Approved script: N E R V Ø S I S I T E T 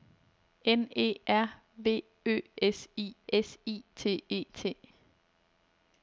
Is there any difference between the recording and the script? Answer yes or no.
no